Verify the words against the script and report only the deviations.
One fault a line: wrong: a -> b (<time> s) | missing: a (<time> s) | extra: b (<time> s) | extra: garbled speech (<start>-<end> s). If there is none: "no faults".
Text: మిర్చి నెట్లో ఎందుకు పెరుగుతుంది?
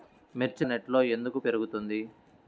no faults